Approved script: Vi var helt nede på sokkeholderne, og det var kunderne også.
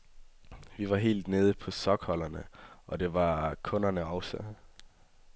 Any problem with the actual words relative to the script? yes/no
no